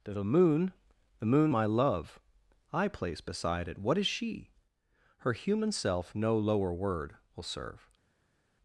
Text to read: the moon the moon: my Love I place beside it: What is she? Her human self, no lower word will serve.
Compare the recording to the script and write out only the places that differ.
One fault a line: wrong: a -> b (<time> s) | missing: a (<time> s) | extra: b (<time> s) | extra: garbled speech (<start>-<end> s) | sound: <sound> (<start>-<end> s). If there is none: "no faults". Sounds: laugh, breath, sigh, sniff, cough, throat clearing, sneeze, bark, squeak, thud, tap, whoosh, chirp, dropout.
no faults